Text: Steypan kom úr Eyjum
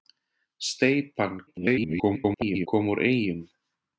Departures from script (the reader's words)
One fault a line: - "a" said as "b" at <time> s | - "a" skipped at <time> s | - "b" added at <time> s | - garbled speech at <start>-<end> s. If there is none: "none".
- garbled speech at 1.5-2.7 s